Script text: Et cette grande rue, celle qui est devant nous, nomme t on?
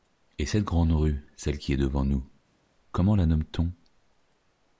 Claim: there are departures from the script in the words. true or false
true